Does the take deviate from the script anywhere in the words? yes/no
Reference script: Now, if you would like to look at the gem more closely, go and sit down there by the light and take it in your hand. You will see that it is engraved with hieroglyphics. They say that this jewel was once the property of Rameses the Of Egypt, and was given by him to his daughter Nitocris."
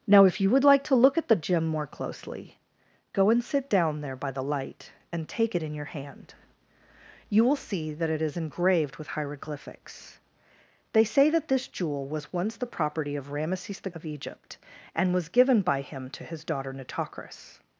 no